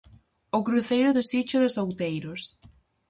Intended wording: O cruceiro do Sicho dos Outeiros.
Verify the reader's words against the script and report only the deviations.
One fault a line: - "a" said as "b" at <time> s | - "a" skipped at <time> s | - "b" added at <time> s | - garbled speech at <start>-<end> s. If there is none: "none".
none